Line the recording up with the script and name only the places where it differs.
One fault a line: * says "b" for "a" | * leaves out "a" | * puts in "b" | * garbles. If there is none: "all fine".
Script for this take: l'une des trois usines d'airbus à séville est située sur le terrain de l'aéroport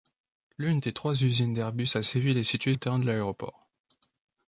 * leaves out "sur"